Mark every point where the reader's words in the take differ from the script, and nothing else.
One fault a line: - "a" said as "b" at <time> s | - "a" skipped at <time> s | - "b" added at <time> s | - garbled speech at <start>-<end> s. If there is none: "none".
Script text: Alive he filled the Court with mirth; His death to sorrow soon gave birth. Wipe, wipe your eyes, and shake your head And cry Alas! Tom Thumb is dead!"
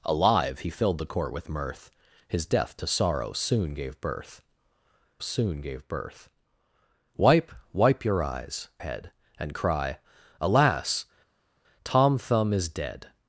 - "soon gave birth" added at 5.2 s
- "and shake your" skipped at 8.7 s